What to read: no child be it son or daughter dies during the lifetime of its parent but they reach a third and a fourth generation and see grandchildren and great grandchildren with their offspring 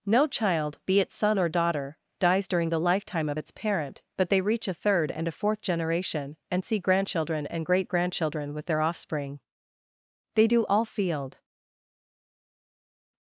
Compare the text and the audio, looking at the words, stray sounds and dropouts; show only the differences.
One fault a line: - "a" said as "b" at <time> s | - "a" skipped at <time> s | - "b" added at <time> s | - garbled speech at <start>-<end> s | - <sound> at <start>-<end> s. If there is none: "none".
- "they do all field" added at 10.3 s